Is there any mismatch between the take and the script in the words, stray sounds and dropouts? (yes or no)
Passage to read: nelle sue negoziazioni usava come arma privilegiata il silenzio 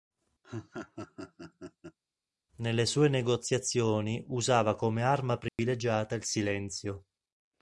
yes